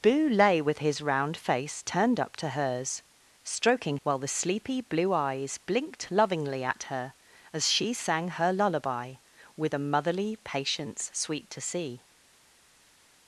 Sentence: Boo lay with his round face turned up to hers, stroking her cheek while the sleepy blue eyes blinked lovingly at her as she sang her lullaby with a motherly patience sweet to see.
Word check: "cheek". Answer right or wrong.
wrong